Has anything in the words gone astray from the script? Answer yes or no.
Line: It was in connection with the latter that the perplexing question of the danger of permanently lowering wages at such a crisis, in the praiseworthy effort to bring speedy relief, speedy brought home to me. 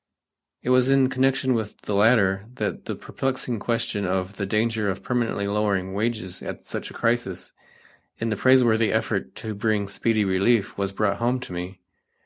yes